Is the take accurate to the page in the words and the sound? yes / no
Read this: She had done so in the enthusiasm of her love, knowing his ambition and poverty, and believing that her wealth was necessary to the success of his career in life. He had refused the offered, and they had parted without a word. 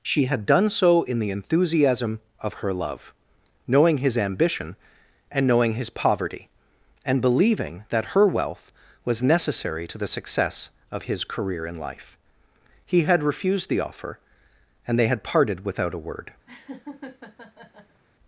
no